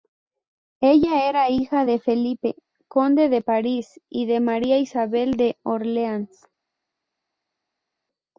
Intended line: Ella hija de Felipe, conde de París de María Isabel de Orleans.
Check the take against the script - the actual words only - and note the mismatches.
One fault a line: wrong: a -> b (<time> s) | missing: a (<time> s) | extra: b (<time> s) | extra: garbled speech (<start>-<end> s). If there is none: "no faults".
extra: era (1.3 s)
extra: y (4.1 s)